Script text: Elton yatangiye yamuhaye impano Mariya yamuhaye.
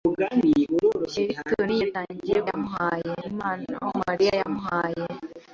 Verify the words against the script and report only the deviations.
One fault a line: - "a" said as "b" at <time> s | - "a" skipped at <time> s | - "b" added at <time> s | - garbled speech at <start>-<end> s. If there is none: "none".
none